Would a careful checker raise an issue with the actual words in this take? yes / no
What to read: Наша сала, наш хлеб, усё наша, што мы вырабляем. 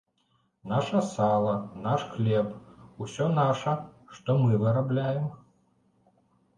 no